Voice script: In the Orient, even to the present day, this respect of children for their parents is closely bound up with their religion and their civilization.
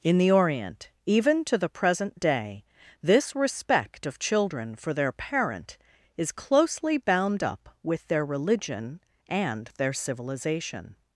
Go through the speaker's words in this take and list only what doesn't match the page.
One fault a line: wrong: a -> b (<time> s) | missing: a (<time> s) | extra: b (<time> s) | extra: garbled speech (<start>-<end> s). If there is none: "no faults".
wrong: parents -> parent (5.1 s)